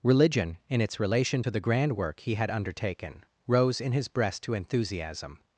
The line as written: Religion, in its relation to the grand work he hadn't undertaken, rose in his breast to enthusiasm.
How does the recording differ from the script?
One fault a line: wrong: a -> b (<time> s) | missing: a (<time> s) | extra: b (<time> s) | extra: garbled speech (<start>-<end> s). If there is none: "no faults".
wrong: hadn't -> had (2.3 s)